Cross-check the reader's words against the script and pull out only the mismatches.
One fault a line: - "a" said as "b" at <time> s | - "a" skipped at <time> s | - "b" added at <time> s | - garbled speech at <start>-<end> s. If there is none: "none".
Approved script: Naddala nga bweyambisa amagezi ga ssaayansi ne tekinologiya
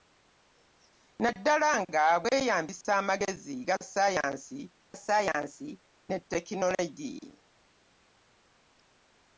- "ssaayansi" added at 5.0 s